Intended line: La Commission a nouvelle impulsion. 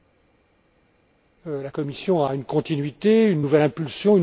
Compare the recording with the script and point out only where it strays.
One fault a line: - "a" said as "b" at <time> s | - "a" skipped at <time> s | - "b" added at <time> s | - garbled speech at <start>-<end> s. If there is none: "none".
- "une continuité une" added at 2.3 s